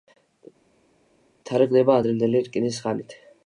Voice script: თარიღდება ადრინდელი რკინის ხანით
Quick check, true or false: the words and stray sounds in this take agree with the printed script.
true